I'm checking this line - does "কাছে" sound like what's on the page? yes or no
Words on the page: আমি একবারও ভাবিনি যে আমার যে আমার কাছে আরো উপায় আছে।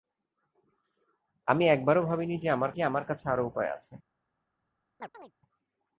yes